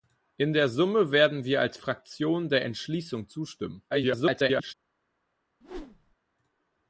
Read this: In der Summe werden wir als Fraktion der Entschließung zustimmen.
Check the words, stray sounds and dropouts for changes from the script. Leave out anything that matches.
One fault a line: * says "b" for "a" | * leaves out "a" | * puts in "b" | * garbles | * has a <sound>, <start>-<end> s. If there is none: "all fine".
* garbles
* has a whoosh, 5.6-6.2 s